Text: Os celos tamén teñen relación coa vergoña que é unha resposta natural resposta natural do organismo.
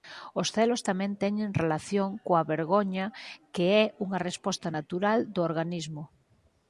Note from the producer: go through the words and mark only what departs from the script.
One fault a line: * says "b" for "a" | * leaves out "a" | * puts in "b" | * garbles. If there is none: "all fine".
* leaves out "resposta natural"